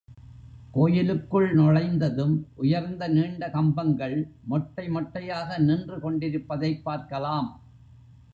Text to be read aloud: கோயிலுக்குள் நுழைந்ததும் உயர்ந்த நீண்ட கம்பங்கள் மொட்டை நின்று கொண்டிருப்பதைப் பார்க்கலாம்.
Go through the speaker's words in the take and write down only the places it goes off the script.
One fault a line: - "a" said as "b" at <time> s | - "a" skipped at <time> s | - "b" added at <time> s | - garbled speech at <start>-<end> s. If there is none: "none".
- "மொட்டையாக" added at 4.9 s